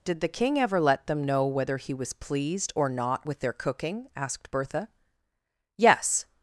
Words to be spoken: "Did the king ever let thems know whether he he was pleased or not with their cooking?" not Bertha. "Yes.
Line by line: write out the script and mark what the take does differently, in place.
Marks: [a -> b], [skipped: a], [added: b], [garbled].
"Did the king ever let [thems -> them] know whether he [skipped: he] was pleased or not with their cooking?" [not -> asked] Bertha. "Yes.